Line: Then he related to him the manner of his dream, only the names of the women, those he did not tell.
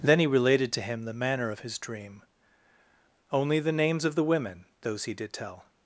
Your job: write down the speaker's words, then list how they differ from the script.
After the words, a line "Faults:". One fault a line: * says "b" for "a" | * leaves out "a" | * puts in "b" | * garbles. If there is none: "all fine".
Then he related to him the manner of his dream, only the names of the women, those he did tell.
Faults:
* leaves out "not"